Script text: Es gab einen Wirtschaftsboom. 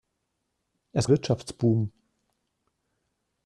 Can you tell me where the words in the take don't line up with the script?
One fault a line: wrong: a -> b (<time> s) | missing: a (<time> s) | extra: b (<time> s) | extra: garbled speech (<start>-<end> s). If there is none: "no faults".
missing: gab einen (1.1 s)